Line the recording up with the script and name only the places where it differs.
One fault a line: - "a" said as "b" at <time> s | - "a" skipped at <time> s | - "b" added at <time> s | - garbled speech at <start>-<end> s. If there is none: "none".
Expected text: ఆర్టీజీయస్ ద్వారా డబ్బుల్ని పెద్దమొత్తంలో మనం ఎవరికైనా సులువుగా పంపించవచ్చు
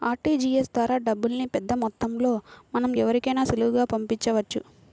none